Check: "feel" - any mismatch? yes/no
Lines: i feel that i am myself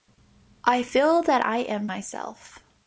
no